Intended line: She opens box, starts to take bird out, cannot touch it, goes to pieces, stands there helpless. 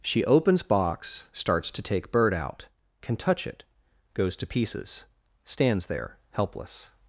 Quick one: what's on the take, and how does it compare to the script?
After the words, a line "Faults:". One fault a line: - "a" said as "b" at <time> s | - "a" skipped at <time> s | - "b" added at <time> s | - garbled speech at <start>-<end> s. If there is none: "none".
She opens box, starts to take bird out, can touch it, goes to pieces, stands there helpless.
Faults:
- "cannot" said as "can" at 3.0 s